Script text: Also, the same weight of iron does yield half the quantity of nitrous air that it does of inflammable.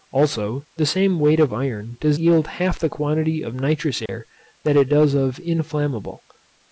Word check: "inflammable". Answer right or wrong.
right